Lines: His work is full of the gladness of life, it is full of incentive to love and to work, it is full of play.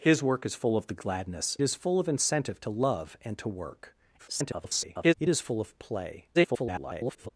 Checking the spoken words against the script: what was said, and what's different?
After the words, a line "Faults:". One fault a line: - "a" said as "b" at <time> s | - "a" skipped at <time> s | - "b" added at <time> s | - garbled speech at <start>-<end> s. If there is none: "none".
His work is full of the gladness is full of incentive to love and to work, [garbled] it is full of play. [garbled]
Faults:
- "of life it" skipped at 1.6 s
- garbled speech at 4.2-5.1 s
- garbled speech at 6.3-7.3 s